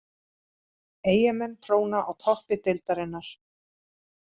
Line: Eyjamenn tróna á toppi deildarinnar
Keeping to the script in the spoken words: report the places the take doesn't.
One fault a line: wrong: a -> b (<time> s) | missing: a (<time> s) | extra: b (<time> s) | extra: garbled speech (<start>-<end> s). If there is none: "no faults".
no faults